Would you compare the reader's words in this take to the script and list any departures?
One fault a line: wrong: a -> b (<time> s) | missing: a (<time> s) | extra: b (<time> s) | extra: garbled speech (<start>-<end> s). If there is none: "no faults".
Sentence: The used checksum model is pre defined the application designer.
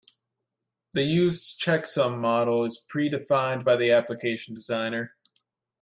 extra: by (3.6 s)